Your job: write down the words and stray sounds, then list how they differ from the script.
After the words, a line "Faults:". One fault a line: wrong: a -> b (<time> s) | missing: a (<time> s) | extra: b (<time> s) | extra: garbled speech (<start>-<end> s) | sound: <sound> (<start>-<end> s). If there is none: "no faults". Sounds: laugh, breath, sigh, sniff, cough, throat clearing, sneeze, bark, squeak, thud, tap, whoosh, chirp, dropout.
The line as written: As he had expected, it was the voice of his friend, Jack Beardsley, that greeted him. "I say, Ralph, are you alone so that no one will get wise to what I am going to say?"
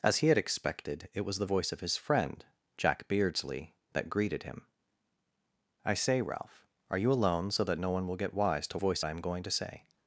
As he had expected, it was the voice of his friend, Jack Beardsley, that greeted him. "I say, Ralph, are you alone so that no one will get wise to voice I am going to say?"
Faults:
wrong: what -> voice (8.7 s)